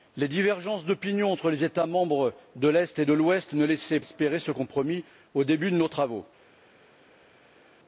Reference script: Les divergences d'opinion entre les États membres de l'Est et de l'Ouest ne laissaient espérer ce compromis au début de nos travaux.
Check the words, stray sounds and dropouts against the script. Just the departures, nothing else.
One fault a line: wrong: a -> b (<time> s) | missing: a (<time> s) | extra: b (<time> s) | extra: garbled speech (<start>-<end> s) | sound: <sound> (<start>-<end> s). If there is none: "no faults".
no faults